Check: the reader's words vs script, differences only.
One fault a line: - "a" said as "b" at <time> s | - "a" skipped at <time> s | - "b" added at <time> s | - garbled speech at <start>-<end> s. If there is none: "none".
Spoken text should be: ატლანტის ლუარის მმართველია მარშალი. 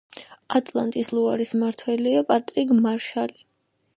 - "პატრიკ" added at 2.3 s